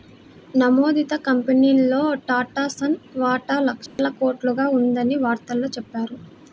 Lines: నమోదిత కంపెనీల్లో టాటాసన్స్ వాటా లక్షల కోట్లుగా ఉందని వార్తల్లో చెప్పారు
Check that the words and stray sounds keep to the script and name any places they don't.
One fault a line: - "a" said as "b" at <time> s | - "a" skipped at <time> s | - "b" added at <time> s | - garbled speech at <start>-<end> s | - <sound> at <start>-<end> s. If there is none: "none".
- dropout at 3.9-4.0 s